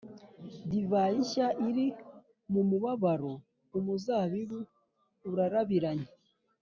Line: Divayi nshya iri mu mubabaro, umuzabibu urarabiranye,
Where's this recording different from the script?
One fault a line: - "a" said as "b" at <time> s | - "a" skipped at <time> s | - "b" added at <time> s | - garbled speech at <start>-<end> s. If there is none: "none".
none